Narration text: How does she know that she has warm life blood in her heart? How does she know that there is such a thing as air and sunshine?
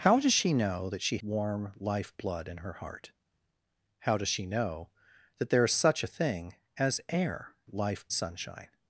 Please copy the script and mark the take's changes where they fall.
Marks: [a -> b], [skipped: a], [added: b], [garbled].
How does she know that she [skipped: has] warm life blood in her heart? How does she know that there is such a thing as air [and -> life] sunshine?